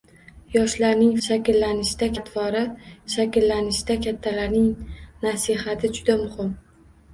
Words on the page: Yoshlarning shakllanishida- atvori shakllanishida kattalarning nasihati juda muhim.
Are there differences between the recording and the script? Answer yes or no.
no